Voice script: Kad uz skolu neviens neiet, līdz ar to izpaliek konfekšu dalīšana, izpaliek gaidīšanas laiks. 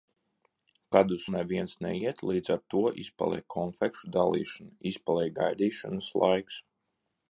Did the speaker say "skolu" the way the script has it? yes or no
no